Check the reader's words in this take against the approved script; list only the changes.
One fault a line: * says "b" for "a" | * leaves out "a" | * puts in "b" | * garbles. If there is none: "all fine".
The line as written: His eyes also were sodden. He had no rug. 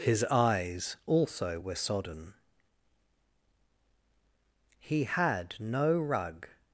all fine